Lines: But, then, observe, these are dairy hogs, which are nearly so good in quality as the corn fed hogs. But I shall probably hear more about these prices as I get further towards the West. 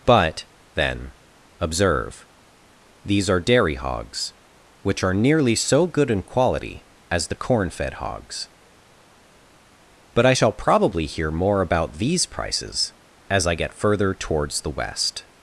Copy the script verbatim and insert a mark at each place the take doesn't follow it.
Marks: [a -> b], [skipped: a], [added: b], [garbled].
But, then, observe, these are dairy hogs, which are nearly so good in quality as the corn fed hogs. But I shall probably hear more about these prices as I get further towards the West.